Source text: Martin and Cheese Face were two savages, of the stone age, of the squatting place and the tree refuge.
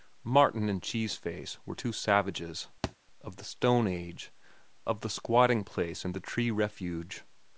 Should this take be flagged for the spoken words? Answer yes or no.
no